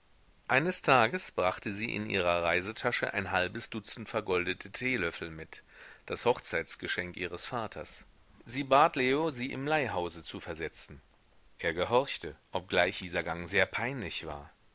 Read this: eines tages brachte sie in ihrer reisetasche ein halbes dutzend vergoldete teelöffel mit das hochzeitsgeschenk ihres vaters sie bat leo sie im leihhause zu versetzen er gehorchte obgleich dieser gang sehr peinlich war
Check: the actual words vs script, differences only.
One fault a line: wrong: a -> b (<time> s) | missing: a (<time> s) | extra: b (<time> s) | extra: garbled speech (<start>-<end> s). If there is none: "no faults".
no faults